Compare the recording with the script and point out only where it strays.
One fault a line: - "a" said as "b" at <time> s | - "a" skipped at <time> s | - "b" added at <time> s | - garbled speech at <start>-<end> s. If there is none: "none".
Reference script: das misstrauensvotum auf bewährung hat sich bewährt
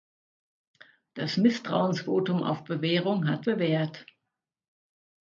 - "sich" skipped at 3.5 s